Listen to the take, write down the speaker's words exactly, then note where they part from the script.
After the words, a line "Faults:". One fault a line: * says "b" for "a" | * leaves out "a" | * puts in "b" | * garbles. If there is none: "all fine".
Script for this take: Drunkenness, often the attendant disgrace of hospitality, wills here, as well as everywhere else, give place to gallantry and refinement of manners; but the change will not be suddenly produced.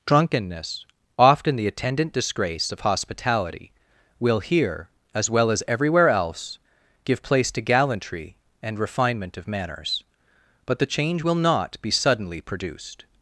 Drunkenness, often the attendant disgrace of hospitality, will here, as well as everywhere else, give place to gallantry and refinement of manners; but the change will not be suddenly produced.
Faults:
* says "will" for "wills"